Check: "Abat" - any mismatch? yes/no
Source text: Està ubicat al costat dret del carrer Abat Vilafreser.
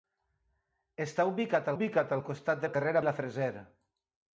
yes